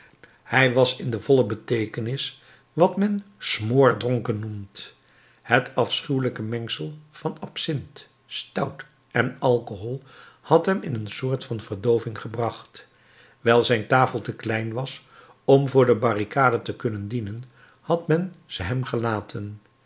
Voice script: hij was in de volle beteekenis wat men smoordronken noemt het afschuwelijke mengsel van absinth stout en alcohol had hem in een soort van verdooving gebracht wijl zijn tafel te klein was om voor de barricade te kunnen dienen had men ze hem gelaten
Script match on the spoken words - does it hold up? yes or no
yes